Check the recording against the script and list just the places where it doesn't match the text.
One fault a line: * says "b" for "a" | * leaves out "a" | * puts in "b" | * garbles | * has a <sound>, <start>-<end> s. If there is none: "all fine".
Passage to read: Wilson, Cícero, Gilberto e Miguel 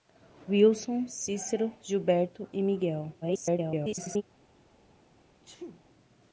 * garbles
* has a sneeze, 5.4-5.8 s